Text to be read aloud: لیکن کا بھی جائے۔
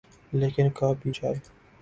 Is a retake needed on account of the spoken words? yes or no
no